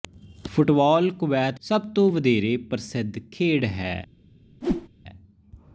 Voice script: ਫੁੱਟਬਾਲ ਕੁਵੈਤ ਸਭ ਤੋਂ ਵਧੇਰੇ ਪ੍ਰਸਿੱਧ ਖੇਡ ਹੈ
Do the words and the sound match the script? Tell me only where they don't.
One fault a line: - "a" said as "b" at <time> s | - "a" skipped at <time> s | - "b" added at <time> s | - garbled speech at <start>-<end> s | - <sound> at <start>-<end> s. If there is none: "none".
- whoosh at 4.6-4.9 s